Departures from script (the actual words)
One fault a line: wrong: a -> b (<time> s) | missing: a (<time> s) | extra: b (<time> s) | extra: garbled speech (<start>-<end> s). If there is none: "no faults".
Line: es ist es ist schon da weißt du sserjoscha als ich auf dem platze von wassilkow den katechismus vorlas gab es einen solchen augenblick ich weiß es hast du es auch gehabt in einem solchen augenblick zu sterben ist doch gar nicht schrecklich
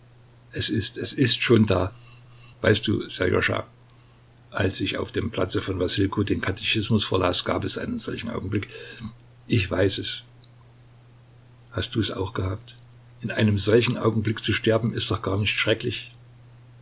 no faults